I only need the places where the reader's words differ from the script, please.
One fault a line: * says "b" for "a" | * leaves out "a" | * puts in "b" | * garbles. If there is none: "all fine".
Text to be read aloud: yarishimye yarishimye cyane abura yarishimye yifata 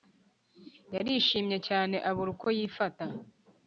* leaves out "yarishimye"
* says "uko" for "yarishimye"